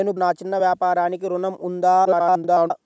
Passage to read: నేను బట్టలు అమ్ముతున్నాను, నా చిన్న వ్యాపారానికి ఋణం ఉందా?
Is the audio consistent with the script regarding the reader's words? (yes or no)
no